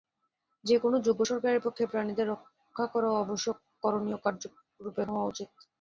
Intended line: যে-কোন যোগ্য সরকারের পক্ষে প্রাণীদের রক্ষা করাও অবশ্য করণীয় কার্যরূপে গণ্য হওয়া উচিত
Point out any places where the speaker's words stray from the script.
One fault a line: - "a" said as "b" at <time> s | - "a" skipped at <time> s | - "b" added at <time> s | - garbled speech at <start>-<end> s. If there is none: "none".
- "গণ্য" skipped at 5.0 s